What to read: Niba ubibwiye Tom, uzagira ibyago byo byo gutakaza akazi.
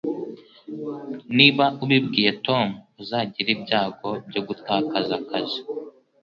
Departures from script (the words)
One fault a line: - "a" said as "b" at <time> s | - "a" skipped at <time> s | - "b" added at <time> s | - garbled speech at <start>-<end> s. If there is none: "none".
- "byo" skipped at 4.4 s